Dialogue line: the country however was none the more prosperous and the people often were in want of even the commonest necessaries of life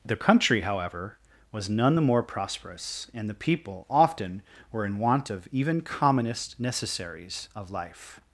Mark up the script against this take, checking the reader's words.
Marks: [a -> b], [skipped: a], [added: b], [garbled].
the country however was none the more prosperous and the people often were in want of even [skipped: the] commonest necessaries of life